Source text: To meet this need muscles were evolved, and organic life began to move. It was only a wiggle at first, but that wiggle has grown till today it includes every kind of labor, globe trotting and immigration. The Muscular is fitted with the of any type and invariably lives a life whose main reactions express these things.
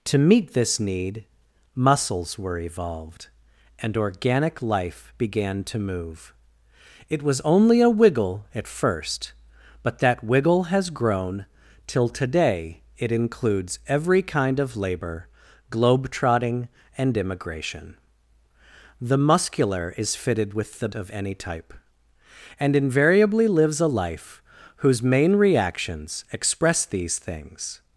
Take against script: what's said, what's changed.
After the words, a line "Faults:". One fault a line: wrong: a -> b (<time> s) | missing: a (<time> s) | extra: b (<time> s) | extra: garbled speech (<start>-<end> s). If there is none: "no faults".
To meet this need muscles were evolved, and organic life began to move. It was only a wiggle at first, but that wiggle has grown till today it includes every kind of labor, globe trotting and immigration. The Muscular is fitted with the of any type and invariably lives a life whose main reactions express these things.
Faults:
no faults